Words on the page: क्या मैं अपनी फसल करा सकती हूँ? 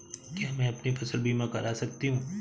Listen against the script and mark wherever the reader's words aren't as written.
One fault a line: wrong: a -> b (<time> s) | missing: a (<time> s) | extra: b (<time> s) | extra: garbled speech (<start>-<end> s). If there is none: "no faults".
extra: बीमा (1.2 s)